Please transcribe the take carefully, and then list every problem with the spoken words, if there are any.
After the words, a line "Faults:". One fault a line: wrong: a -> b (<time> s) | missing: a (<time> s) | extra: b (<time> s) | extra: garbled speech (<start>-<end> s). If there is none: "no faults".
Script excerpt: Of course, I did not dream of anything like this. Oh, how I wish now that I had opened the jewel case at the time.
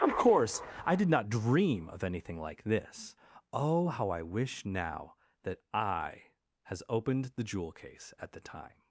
Of course, I did not dream of anything like this. Oh, how I wish now that I has opened the jewel case at the time.
Faults:
wrong: had -> has (6.6 s)